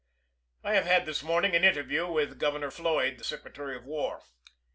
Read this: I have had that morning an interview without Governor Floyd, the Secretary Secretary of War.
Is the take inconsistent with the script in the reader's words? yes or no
yes